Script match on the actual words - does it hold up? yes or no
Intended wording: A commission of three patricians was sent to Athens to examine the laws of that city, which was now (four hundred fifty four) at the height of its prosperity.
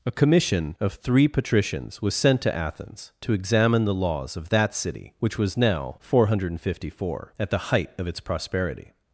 yes